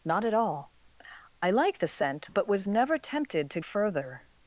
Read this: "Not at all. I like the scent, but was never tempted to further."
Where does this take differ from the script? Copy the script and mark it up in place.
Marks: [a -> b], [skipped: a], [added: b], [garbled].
"Not at all. I like the scent, but was never tempted to further."